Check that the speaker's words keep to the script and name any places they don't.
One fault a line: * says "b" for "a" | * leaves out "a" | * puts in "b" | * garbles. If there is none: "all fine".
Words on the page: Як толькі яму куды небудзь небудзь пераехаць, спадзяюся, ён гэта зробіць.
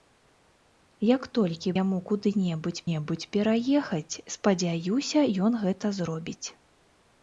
all fine